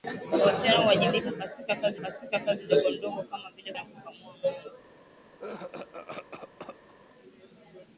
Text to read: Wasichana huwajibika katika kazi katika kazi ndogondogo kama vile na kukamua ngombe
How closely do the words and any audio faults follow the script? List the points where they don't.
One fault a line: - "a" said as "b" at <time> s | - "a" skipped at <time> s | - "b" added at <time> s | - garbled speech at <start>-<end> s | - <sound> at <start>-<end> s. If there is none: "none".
- cough at 5.4-6.9 s